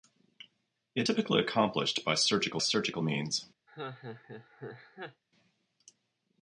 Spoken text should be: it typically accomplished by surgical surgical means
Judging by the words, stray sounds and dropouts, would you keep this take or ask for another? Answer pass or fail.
fail